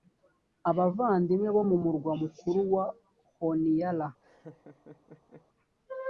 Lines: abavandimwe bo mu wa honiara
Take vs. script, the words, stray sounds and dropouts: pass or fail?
fail